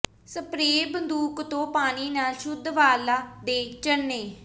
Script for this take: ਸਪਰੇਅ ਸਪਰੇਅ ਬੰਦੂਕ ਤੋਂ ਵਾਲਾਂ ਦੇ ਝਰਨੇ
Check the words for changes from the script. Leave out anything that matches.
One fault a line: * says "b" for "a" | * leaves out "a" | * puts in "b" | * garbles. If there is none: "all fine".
* leaves out "ਸਪਰੇਅ"
* puts in "ਪਾਣੀ ਨਾਲ ਸ਼ੁੱਧ"